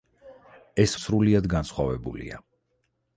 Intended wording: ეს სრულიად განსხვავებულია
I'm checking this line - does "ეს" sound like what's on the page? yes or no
yes